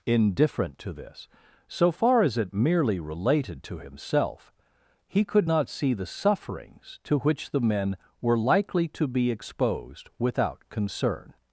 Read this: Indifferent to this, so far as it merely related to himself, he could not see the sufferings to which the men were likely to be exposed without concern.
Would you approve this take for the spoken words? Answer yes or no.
yes